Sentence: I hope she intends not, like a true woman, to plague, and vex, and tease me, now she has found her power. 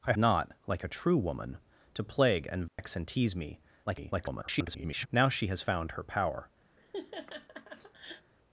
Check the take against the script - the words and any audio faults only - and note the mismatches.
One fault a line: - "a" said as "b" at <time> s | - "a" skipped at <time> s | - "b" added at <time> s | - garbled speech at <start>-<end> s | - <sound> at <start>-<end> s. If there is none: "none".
- "hope she intends" skipped at 0.1 s
- dropout at 2.7-2.8 s
- garbled speech at 3.9-5.1 s
- laugh at 6.8-8.3 s